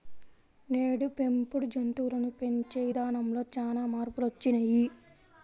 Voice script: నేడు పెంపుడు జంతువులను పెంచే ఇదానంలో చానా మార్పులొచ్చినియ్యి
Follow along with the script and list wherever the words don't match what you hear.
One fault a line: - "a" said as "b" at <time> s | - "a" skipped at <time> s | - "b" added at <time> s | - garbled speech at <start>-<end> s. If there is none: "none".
none